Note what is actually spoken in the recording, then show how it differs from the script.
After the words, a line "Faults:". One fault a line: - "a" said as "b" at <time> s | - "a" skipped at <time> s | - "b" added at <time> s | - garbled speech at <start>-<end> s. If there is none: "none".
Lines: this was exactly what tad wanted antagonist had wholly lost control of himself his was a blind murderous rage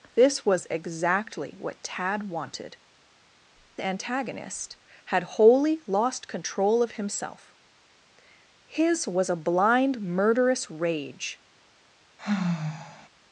this was exactly what tad wanted antagonist had wholly lost control of himself his was a blind murderous rage
Faults:
none